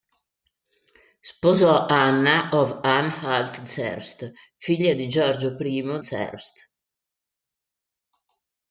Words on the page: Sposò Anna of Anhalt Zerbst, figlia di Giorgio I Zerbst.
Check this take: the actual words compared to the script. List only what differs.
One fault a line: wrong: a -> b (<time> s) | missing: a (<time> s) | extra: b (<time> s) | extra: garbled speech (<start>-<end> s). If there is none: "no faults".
no faults